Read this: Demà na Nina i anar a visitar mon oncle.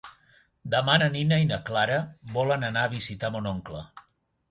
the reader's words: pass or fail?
fail